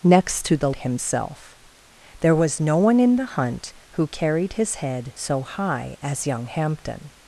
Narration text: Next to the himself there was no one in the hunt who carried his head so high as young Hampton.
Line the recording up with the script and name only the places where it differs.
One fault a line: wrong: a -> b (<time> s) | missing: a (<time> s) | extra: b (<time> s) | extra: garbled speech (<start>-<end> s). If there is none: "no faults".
no faults